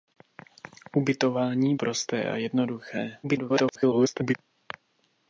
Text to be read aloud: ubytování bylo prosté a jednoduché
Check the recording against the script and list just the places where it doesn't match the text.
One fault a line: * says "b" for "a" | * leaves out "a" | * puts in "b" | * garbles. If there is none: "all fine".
* leaves out "bylo"
* garbles